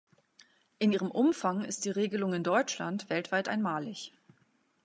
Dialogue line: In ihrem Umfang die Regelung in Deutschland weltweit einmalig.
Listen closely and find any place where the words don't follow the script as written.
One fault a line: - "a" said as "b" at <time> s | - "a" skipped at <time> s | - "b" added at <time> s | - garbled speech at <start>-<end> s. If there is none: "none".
- "ist" added at 1.6 s